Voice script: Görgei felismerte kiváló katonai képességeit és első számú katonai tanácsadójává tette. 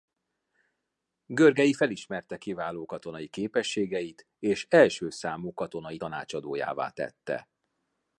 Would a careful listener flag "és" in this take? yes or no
no